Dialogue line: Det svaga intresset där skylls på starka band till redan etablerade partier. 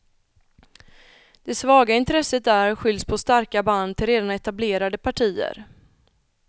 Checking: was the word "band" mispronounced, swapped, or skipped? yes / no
no